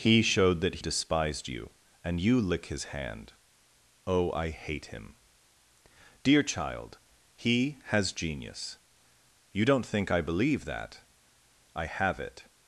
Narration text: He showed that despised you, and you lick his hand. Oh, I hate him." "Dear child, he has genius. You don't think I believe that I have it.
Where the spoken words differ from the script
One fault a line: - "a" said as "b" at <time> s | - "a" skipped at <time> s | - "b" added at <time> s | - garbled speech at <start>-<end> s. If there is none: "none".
none